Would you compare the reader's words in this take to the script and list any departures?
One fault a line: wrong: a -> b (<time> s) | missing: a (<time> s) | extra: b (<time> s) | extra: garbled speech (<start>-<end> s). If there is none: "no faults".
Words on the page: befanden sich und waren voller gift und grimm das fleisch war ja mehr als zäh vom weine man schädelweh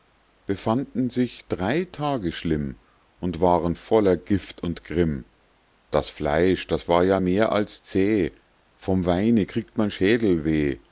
extra: drei tage schlimm (1.5 s)
extra: das (6.7 s)
extra: kriegt (9.4 s)